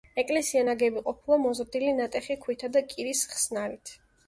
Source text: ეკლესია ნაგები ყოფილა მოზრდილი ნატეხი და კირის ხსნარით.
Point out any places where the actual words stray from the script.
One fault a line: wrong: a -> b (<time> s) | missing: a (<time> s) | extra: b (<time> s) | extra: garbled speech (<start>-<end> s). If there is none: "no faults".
extra: ქვითა (2.5 s)